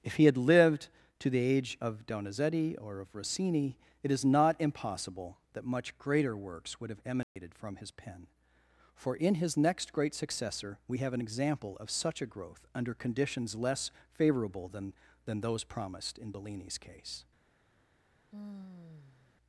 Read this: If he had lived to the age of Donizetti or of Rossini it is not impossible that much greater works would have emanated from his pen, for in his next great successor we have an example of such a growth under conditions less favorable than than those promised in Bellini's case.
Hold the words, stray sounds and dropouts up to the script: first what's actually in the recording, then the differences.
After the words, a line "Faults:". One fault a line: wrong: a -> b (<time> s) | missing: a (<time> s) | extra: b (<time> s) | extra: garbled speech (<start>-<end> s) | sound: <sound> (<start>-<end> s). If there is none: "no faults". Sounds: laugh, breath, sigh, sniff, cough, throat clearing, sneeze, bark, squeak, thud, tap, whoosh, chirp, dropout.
If he had lived to the age of Donizetti or of Rossini it is not impossible that much greater works would have emanated from his pen, for in his next great successor we have an example of such a growth under conditions less favorable than than those promised in Bellini's case.
Faults:
sound: dropout (7.2-7.4 s)
sound: sigh (18.3-19.4 s)